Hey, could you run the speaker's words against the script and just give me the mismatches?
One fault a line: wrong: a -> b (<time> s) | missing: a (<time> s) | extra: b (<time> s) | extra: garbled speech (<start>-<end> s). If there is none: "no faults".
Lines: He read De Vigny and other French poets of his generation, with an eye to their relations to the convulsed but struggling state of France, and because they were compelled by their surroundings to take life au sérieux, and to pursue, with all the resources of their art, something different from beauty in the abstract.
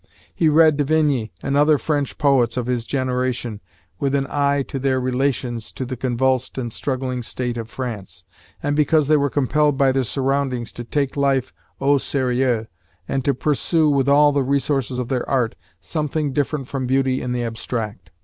wrong: but -> and (6.6 s)